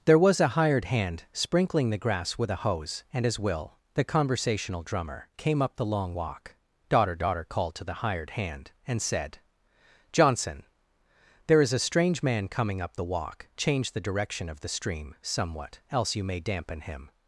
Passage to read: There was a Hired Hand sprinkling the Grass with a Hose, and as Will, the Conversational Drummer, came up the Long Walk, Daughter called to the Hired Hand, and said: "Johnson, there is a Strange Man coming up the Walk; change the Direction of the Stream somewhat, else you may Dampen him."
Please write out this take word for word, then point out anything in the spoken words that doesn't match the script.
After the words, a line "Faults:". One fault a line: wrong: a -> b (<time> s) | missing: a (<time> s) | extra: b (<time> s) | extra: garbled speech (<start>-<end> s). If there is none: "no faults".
There was a Hired Hand sprinkling the Grass with a Hose, and as Will, the Conversational Drummer, came up the Long Walk, Daughter Daughter called to the Hired Hand, and said: "Johnson, there is a Strange Man coming up the Walk; change the Direction of the Stream somewhat, else you may Dampen him."
Faults:
extra: Daughter (7.2 s)